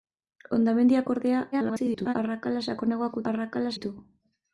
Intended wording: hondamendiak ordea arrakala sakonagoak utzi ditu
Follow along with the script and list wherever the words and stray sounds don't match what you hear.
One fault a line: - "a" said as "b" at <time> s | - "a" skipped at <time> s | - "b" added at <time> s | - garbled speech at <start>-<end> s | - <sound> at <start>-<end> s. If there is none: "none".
- garbled speech at 1.5-2.1 s
- "utzi" said as "arrakala" at 3.3 s